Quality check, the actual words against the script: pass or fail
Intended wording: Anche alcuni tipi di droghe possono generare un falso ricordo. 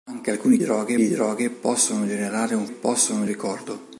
fail